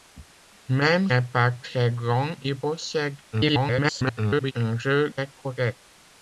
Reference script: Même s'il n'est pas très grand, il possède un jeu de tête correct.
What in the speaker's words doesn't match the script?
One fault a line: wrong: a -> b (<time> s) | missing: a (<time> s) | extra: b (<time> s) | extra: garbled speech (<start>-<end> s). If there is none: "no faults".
missing: s'il (1.1 s)
extra: garbled speech (3.3-4.5 s)
missing: de (5.1 s)